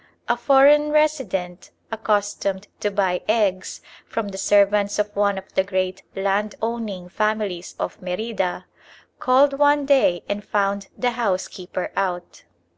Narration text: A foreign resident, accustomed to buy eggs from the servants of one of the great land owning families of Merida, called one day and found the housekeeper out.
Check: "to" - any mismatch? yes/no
no